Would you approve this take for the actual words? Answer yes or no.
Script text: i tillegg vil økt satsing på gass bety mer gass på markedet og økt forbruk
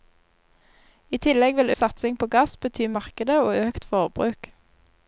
no